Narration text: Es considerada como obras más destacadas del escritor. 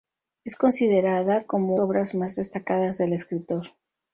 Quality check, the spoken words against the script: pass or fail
pass